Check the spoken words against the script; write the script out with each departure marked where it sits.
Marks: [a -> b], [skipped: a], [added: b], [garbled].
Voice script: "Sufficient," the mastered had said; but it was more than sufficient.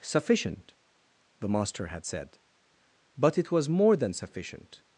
"Sufficient," the [mastered -> master] had said; but it was more than sufficient.